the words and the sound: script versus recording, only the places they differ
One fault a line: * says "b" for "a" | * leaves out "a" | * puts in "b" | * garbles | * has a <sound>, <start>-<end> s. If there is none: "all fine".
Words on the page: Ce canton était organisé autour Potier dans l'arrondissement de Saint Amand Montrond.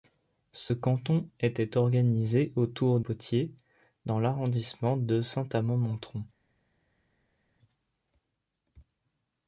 all fine